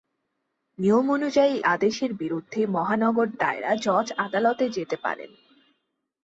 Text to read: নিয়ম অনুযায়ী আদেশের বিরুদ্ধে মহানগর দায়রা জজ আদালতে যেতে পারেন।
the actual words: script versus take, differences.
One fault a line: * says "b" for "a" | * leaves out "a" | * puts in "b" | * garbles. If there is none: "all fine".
all fine